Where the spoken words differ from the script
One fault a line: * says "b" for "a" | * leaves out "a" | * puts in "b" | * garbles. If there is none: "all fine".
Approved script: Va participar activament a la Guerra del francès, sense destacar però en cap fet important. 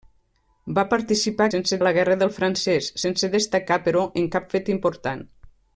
* says "sense" for "activament"